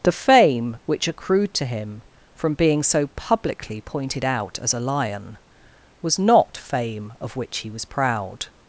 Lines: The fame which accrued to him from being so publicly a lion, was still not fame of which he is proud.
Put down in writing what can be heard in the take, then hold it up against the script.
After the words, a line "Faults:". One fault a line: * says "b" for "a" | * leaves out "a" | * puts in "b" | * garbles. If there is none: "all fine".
The fame which accrued to him from being so publicly pointed out as a lion, was not fame of which he was proud.
Faults:
* puts in "pointed out as"
* leaves out "still"
* says "was" for "is"